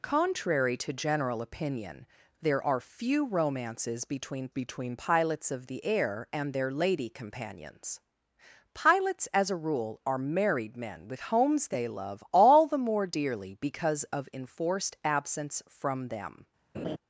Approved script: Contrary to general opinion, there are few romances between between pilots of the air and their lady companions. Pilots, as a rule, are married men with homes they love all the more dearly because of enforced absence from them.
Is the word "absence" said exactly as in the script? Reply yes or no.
yes